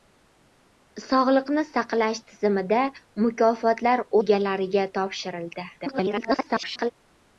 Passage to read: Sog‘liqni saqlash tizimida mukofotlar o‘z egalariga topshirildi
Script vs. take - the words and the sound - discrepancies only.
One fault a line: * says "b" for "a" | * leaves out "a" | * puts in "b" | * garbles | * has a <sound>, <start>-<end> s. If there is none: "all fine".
* leaves out "o‘z"
* garbles